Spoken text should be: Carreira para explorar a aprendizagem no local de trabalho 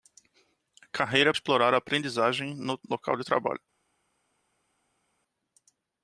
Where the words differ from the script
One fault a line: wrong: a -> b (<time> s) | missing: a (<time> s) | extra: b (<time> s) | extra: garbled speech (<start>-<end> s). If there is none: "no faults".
missing: para (1.3 s)